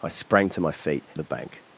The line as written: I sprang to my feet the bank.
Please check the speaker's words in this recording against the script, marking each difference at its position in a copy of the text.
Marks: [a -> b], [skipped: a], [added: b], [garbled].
I sprang to my feet the bank.